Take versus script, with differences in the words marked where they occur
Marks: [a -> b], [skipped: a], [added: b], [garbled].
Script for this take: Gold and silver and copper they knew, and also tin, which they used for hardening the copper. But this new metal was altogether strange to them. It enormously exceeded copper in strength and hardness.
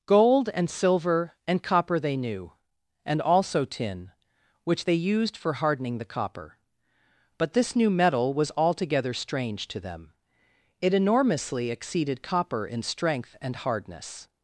Gold and silver and copper they knew, and also tin, which they used for hardening the copper. But this new metal was altogether strange to them. It enormously exceeded copper in strength and hardness.